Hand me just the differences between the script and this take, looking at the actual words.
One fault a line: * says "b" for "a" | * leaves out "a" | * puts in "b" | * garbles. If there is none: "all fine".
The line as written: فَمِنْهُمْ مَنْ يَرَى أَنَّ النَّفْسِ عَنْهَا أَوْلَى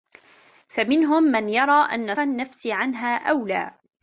all fine